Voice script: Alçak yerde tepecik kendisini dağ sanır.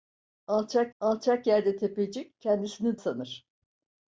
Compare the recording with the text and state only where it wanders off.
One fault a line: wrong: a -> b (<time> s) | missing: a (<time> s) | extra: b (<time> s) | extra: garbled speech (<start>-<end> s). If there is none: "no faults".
extra: alçak (1.0 s)
missing: dağ (3.0 s)